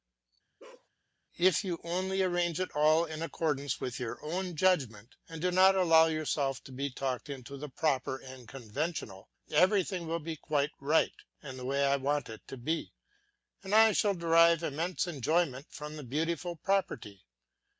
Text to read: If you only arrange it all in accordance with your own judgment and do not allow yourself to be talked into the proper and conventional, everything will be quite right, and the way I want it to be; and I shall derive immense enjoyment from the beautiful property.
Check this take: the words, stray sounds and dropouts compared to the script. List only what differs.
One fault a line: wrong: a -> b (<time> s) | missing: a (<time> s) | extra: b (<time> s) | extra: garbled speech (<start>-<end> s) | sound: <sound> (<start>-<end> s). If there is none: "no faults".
sound: bark (0.6-0.9 s)